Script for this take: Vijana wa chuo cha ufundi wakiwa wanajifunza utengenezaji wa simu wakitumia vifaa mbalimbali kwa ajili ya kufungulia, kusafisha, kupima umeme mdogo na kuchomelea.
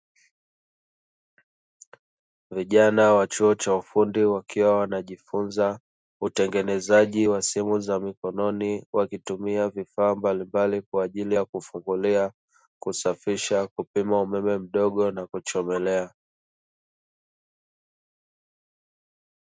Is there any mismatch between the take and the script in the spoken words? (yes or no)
yes